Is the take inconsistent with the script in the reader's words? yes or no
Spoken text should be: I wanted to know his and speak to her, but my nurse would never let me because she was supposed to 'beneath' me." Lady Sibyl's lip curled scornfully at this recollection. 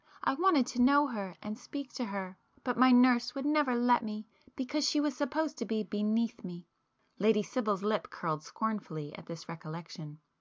yes